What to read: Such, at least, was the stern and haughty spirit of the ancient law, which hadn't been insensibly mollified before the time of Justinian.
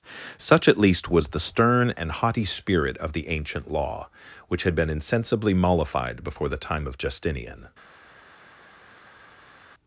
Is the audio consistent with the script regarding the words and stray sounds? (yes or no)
no